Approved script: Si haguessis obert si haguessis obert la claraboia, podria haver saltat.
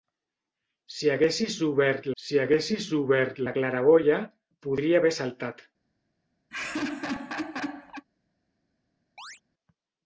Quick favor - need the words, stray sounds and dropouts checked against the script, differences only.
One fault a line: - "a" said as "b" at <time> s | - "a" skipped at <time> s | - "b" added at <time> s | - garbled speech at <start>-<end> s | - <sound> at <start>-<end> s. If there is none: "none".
- laugh at 6.5-8.0 s
- chirp at 9.2-9.4 s